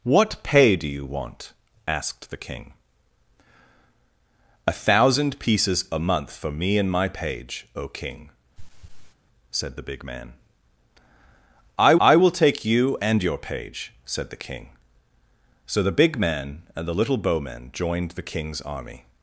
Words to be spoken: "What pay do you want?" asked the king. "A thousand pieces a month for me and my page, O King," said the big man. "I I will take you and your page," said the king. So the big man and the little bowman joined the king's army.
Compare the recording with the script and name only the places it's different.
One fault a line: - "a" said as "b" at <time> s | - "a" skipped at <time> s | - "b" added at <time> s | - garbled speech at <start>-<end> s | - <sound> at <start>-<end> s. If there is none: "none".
- throat clearing at 8.6-9.1 s